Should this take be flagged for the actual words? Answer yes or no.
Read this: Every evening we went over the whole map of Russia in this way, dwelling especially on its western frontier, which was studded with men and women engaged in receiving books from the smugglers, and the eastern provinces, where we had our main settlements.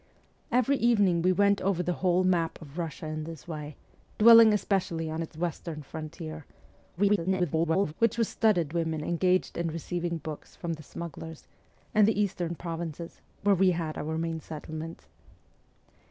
yes